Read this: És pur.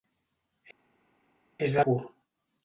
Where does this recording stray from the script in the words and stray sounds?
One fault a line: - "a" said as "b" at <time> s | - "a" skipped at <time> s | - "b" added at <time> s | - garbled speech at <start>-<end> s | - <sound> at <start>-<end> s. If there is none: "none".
none